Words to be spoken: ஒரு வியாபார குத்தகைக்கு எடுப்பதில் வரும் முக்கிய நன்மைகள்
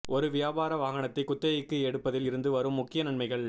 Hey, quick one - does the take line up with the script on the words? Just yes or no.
no